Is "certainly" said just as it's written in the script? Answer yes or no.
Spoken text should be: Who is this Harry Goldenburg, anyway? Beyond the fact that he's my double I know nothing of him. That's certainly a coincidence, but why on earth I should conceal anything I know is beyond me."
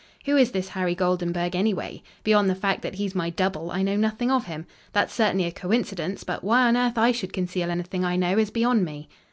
yes